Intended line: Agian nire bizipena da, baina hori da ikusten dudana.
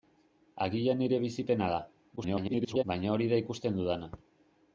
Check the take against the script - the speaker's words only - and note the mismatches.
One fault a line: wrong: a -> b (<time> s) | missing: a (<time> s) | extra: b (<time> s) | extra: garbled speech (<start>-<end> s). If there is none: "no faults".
extra: garbled speech (2.2-2.8 s)